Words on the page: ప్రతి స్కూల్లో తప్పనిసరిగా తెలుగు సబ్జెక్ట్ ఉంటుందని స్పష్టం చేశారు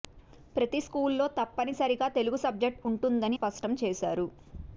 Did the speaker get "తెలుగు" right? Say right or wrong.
right